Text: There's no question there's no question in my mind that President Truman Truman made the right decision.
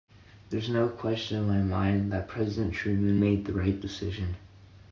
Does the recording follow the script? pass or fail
fail